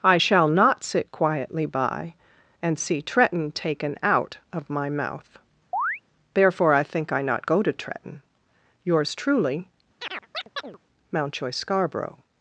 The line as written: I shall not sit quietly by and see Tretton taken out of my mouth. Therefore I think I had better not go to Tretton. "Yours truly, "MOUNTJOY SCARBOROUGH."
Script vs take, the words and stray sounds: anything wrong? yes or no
yes